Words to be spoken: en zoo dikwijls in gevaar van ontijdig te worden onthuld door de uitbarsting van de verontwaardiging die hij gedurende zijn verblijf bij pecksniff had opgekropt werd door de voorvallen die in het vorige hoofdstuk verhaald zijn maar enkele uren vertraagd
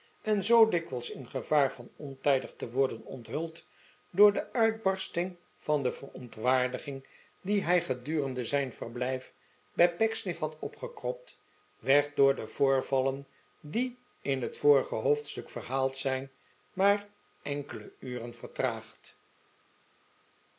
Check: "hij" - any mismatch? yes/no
no